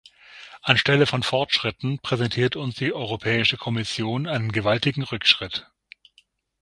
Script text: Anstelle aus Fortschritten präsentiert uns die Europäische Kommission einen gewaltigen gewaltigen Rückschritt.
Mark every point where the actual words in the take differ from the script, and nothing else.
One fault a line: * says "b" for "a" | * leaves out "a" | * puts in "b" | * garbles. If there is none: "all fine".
* says "von" for "aus"
* leaves out "gewaltigen"